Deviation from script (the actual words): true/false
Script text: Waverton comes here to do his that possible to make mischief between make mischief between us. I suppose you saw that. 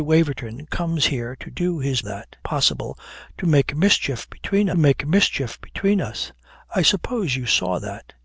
false